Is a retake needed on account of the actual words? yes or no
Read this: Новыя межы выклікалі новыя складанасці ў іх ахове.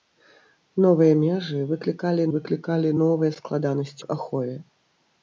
yes